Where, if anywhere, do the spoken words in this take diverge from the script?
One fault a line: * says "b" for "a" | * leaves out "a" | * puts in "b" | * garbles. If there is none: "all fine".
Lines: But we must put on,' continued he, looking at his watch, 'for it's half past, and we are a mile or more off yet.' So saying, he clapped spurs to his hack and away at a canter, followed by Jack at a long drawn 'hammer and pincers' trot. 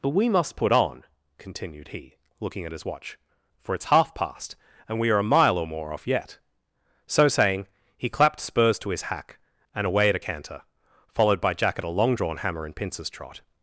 all fine